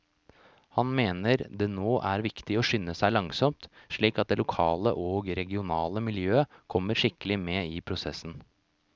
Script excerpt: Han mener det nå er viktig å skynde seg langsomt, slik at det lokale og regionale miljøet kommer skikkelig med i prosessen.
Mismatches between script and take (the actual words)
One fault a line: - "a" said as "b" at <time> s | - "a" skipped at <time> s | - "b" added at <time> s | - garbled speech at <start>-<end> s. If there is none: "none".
none